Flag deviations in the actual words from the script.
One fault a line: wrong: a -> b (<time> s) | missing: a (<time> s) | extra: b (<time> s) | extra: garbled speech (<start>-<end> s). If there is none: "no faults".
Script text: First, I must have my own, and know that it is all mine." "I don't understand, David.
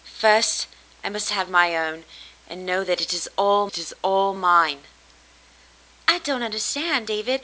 extra: it is all (3.7 s)